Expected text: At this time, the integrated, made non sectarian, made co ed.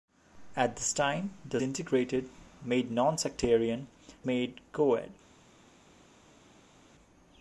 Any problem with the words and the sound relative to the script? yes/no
no